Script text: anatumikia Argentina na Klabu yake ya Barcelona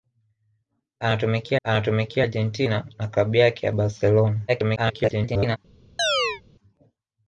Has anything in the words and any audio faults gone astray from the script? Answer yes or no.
yes